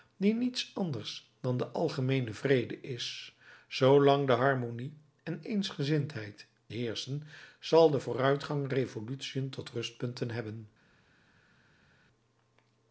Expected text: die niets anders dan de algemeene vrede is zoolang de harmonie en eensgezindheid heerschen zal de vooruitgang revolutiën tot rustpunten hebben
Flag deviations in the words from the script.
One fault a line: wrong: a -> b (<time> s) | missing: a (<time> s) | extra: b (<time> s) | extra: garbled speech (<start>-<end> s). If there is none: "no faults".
no faults